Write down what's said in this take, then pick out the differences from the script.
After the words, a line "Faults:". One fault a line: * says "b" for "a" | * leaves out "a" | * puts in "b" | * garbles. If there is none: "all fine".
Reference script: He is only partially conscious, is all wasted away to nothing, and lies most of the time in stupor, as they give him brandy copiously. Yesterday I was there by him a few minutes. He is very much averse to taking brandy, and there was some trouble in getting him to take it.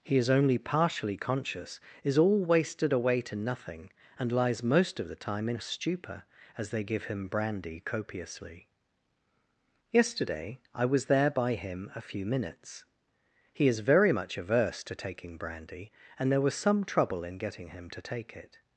He is only partially conscious, is all wasted away to nothing, and lies most of the time in stupor, as they give him brandy copiously. Yesterday I was there by him a few minutes. He is very much averse to taking brandy, and there was some trouble in getting him to take it.
Faults:
all fine